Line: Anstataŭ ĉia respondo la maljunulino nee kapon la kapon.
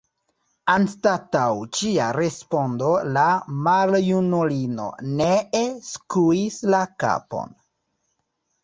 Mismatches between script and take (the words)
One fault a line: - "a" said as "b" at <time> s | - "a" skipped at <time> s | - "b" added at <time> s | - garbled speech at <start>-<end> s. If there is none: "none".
- "kapon" said as "skuis" at 5.9 s